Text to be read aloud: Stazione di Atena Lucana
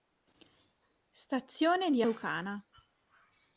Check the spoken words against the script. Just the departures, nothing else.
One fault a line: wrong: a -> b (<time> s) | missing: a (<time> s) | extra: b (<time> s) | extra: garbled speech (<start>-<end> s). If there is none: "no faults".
missing: Atena (2.0 s)